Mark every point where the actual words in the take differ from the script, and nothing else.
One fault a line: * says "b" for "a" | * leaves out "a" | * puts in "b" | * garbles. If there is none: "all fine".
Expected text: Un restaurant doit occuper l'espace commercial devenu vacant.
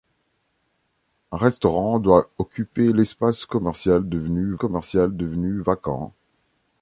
* puts in "commercial devenu"